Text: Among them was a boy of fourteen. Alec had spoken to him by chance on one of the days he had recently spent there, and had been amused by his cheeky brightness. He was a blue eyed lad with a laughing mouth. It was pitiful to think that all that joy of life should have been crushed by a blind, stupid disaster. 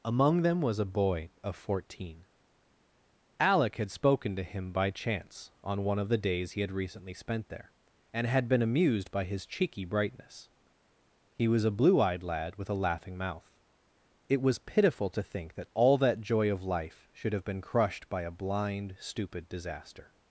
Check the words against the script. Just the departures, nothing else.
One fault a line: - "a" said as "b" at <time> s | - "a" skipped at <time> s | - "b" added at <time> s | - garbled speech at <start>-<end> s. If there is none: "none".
none